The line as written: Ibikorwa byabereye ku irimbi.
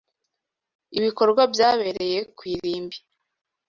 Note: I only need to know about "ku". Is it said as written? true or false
true